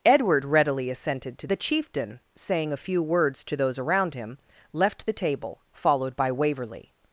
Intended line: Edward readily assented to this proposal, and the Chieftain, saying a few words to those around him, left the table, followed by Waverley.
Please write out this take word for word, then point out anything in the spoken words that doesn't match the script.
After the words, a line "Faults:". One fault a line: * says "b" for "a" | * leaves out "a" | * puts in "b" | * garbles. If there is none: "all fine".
Edward readily assented to the Chieftain, saying a few words to those around him, left the table, followed by Waverley.
Faults:
* leaves out "this proposal and"